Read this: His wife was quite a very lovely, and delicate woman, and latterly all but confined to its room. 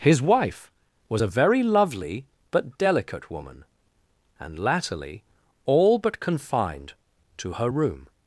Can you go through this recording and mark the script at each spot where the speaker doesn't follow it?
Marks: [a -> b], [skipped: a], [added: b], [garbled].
His wife was [skipped: quite] a very lovely, [and -> but] delicate woman, and latterly all but confined to [its -> her] room.